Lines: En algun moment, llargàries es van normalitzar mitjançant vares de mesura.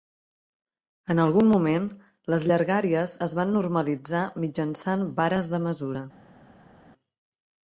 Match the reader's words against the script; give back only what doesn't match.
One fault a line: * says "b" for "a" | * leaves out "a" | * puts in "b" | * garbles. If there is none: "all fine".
* puts in "les"